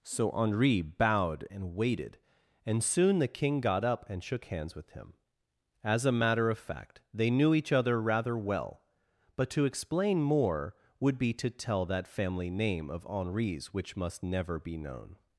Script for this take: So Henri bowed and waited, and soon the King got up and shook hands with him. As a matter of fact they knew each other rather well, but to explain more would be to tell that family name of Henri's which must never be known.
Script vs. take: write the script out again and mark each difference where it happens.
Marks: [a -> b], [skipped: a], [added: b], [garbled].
So Henri bowed and waited, and soon the King got up and shook hands with him. As a matter of fact they knew each other rather well, but to explain more would be to tell that family name of Henri's which must never be known.